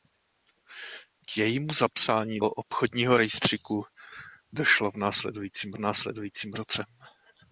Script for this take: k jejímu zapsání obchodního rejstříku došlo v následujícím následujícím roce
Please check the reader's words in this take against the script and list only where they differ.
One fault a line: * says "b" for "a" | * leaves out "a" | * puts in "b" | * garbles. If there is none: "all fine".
all fine